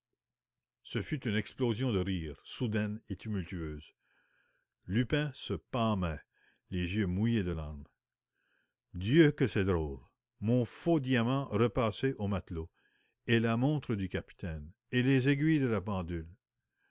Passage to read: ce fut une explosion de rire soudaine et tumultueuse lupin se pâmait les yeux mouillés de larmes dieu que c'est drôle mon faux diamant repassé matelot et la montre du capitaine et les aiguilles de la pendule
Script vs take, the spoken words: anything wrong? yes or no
yes